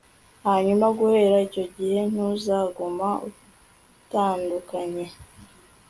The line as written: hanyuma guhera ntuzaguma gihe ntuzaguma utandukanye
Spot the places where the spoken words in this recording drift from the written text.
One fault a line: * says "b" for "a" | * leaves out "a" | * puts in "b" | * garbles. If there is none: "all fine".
* says "icyo" for "ntuzaguma"